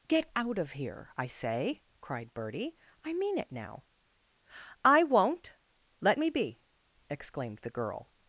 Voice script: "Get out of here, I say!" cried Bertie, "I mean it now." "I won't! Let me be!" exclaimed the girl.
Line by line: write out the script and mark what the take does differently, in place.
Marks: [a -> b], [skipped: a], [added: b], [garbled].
"Get out of here, I say!" cried Bertie, "I mean it now." "I won't! Let me be!" exclaimed the girl.